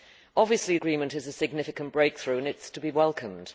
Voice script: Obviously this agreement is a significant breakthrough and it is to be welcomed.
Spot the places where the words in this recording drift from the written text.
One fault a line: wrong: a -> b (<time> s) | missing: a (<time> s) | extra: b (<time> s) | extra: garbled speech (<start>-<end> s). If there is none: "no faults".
missing: this (0.8 s)